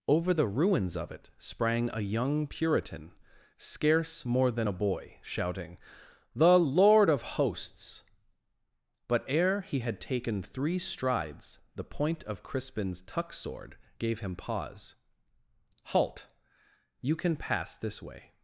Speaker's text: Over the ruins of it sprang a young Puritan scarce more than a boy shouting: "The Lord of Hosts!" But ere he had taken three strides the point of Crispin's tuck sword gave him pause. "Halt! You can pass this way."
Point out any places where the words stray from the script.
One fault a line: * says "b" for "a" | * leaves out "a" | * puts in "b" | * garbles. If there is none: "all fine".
all fine